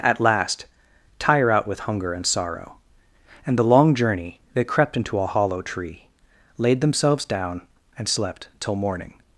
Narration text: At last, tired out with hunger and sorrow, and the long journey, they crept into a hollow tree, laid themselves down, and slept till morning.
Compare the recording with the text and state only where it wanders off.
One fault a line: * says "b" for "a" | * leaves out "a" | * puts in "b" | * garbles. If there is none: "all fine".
* says "tire" for "tired"